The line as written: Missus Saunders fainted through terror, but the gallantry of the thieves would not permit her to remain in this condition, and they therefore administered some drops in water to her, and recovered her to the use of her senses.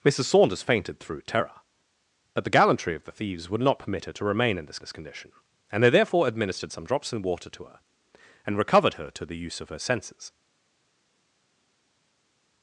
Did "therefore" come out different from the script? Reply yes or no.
no